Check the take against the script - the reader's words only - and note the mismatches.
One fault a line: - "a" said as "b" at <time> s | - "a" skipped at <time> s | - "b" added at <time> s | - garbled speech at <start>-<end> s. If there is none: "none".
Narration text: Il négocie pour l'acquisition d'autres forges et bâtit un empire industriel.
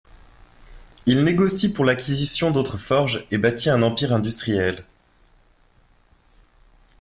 none